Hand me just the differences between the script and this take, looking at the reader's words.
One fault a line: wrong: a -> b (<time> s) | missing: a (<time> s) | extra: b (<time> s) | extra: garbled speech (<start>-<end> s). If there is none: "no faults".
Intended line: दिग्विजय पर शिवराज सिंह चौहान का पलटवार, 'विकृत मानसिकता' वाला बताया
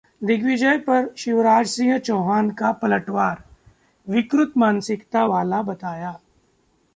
no faults